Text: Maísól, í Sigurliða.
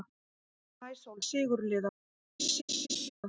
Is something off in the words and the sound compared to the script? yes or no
yes